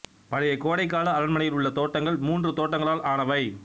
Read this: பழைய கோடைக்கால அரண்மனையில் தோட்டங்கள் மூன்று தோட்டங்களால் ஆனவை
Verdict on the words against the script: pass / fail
fail